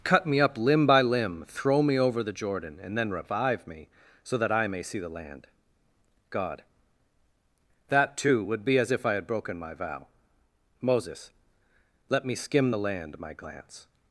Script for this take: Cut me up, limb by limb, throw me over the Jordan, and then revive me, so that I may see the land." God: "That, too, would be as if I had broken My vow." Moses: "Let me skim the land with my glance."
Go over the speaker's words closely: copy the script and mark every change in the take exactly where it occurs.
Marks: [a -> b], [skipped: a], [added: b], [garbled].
Cut me up, limb by limb, throw me over the Jordan, and then revive me, so that I may see the land." God: "That, too, would be as if I had broken My vow." Moses: "Let me skim the land [skipped: with] my glance."